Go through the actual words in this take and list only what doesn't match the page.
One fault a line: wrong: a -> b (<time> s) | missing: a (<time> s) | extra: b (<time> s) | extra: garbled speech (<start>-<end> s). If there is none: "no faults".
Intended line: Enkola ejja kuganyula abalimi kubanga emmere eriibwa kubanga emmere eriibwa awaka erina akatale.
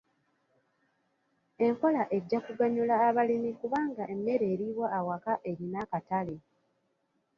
missing: kubanga emmere eriibwa (4.9 s)